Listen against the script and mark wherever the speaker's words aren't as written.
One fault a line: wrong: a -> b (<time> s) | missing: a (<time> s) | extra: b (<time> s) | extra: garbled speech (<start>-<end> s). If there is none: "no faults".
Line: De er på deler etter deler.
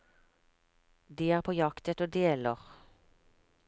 wrong: deler -> jakt (1.5 s)